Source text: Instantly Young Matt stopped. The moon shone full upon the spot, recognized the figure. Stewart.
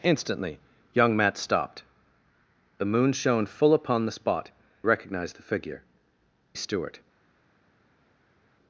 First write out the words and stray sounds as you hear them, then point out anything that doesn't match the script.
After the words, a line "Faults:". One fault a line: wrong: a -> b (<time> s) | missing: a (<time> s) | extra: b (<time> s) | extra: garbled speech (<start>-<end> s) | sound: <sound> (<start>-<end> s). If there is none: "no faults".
Instantly Young Matt stopped. The moon shone full upon the spot, recognized the figure. Stewart.
Faults:
no faults